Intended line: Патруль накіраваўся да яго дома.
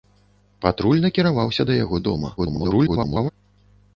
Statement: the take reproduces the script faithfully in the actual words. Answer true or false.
false